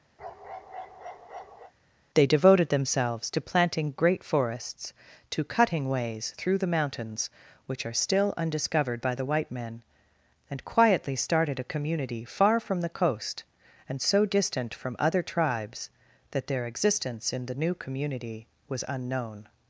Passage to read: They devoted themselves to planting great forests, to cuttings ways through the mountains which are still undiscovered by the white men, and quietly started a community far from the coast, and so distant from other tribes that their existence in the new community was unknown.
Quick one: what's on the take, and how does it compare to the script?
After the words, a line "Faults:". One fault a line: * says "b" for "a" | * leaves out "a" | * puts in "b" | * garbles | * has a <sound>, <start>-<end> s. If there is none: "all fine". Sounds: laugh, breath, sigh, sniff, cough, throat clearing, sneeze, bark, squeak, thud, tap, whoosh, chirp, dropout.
They devoted themselves to planting great forests, to cutting ways through the mountains which are still undiscovered by the white men, and quietly started a community far from the coast, and so distant from other tribes that their existence in the new community was unknown.
Faults:
* has a bark, 0.2-1.7 s
* says "cutting" for "cuttings"